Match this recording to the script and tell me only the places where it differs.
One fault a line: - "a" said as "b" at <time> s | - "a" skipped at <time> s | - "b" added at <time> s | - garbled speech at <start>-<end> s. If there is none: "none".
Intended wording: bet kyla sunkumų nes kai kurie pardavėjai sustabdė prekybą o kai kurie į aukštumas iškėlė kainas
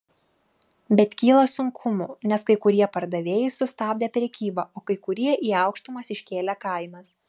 none